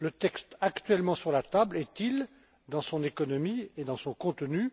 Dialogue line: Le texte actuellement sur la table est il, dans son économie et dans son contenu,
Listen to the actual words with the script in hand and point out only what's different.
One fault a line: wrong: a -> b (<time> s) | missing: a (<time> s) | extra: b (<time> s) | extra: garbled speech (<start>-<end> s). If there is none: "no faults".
no faults